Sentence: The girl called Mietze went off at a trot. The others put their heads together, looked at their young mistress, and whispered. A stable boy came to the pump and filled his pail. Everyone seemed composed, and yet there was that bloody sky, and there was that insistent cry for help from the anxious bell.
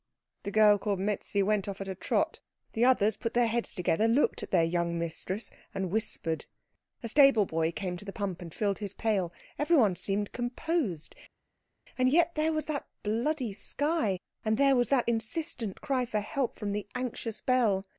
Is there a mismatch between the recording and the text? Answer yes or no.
no